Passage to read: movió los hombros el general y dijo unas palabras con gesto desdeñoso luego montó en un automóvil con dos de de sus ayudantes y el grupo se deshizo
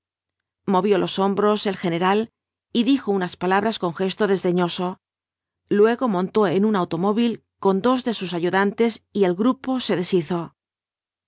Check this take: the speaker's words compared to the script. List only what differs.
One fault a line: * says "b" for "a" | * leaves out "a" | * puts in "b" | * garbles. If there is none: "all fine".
* leaves out "de"